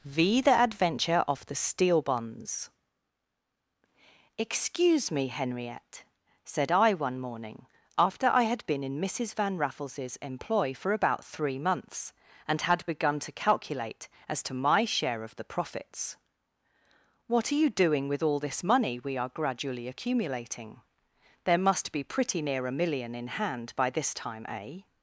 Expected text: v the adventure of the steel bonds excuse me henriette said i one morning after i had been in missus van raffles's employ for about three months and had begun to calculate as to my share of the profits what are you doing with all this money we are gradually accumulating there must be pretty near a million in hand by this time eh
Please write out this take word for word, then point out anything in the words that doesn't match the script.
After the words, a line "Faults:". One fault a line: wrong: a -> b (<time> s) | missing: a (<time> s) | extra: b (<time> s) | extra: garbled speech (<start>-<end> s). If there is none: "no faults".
v the adventure of the steel bonds excuse me henriette said i one morning after i had been in missus van raffles's employ for about three months and had begun to calculate as to my share of the profits what are you doing with all this money we are gradually accumulating there must be pretty near a million in hand by this time eh
Faults:
no faults